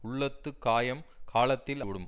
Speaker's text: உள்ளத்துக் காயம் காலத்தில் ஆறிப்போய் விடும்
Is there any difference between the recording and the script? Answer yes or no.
yes